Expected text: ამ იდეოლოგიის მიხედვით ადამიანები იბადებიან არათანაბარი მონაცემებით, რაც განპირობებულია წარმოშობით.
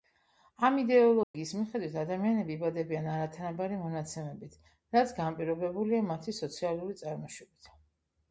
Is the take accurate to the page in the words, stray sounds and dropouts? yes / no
no